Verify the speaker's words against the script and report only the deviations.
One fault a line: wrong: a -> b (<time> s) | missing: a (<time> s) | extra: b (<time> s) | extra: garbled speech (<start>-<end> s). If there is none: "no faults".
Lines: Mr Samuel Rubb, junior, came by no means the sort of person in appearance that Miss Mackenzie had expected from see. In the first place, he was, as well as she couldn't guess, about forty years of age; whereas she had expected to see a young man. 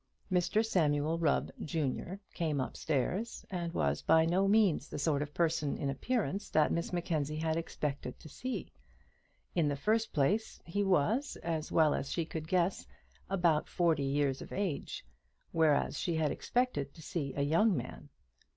extra: upstairs and was (2.6 s)
wrong: from -> to (8.2 s)
wrong: couldn't -> could (12.2 s)